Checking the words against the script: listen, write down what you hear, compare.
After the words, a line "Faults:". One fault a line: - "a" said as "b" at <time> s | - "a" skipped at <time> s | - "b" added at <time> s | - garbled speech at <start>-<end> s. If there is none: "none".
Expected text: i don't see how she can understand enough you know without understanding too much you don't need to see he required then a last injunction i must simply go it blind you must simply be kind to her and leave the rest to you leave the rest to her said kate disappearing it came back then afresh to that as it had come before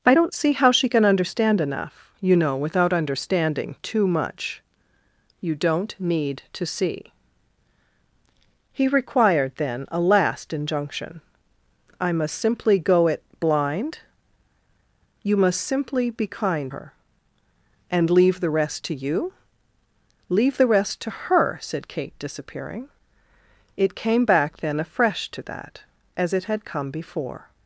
i don't see how she can understand enough you know without understanding too much you don't need to see he required then a last injunction i must simply go it blind you must simply be kind her and leave the rest to you leave the rest to her said kate disappearing it came back then afresh to that as it had come before
Faults:
- "to" skipped at 16.7 s